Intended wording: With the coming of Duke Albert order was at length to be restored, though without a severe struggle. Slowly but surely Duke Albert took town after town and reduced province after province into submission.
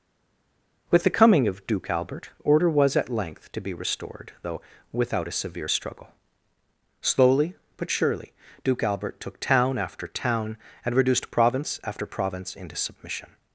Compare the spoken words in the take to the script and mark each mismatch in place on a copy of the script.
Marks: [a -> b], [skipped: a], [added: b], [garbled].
With the coming of Duke Albert order was at length to be restored, though without a severe struggle. Slowly but surely Duke Albert took town after town and reduced province after province into submission.